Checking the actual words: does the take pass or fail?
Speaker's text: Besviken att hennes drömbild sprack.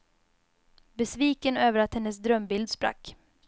fail